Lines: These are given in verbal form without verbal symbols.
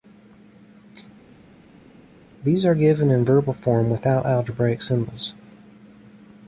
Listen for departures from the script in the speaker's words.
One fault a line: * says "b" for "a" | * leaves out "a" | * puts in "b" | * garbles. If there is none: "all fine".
* says "algebraic" for "verbal"